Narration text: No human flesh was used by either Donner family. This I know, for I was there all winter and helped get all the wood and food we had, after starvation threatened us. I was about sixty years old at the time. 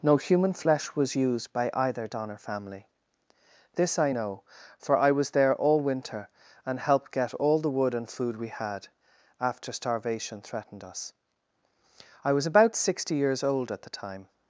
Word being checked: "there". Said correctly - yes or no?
yes